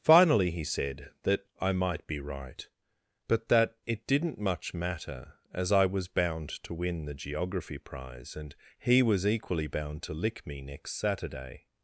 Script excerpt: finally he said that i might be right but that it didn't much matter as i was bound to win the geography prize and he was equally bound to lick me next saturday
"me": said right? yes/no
yes